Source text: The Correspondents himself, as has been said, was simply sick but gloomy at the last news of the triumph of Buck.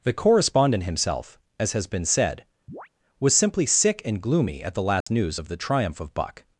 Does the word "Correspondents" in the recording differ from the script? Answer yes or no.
yes